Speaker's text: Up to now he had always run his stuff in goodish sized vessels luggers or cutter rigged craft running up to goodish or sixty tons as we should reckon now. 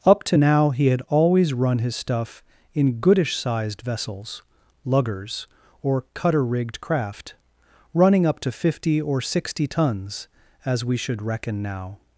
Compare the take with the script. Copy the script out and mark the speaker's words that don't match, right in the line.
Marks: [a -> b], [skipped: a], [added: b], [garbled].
Up to now he had always run his stuff in goodish sized vessels luggers or cutter rigged craft running up to [goodish -> fifty] or sixty tons as we should reckon now.